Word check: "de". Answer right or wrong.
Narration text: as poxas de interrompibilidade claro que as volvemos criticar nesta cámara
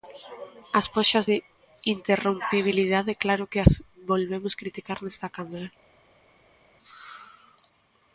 right